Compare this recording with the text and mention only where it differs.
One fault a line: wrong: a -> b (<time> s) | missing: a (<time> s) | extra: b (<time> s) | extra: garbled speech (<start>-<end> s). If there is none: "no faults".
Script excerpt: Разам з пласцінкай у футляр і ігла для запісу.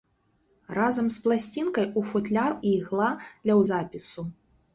no faults